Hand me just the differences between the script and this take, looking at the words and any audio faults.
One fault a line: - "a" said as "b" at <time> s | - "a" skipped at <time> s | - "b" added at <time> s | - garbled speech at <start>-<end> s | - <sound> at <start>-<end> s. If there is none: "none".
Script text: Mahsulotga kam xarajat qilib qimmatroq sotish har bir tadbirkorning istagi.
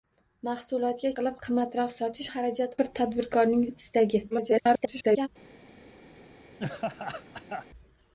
- "kam xarajat" skipped at 1.1 s
- "har" said as "xarajat" at 2.3 s
- garbled speech at 4.3-5.3 s
- laugh at 6.6-7.7 s